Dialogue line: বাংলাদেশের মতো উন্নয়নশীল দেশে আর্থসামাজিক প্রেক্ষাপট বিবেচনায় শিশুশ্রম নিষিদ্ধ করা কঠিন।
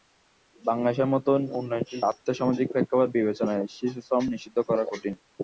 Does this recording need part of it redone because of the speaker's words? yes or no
yes